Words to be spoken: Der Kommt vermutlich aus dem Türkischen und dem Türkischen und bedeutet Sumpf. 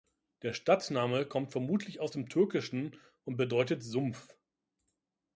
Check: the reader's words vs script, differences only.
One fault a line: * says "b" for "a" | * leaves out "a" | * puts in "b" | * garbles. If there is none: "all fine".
* puts in "Stadtname"
* leaves out "dem Türkischen und"